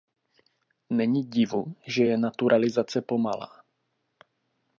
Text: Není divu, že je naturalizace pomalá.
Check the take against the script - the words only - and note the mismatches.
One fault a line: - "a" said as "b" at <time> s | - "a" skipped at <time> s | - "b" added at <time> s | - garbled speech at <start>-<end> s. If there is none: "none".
none